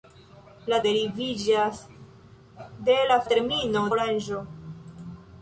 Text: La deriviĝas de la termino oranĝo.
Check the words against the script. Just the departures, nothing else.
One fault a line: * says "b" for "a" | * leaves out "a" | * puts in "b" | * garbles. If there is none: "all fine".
all fine